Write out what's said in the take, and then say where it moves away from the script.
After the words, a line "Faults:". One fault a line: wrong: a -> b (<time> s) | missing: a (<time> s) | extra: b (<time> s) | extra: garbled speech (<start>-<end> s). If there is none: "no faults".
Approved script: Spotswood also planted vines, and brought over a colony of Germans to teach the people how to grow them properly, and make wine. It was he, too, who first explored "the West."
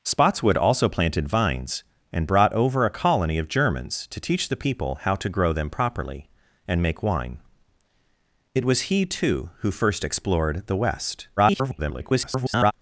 Spotswood also planted vines, and brought over a colony of Germans to teach the people how to grow them properly, and make wine. It was he, too, who first explored "the West." [garbled]
Faults:
extra: garbled speech (11.4-12.7 s)